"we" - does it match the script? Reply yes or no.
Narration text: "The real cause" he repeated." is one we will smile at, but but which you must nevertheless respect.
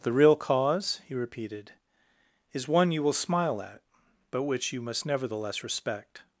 no